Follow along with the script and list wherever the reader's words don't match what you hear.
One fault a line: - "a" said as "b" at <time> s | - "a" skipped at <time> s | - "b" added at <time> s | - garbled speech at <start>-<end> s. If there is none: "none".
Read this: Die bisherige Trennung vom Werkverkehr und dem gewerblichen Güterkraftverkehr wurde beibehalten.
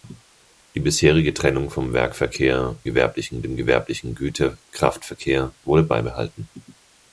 - "und" said as "gewerblichen" at 2.8 s